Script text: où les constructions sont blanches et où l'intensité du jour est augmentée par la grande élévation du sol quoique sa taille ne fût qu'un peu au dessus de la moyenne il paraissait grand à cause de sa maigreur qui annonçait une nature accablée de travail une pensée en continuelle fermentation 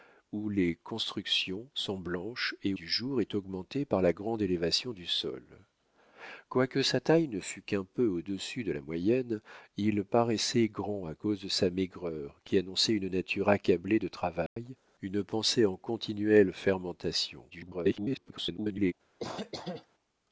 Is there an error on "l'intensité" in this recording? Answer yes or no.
yes